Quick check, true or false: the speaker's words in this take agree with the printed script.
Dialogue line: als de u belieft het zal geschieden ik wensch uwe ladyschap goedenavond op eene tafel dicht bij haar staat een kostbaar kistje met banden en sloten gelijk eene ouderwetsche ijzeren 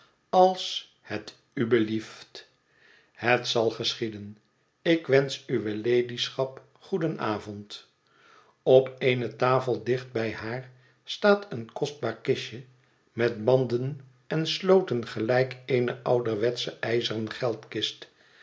false